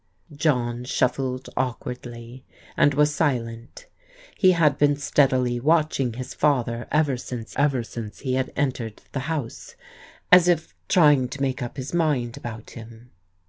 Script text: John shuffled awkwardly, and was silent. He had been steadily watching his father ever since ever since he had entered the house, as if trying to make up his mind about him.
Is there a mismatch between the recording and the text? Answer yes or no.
no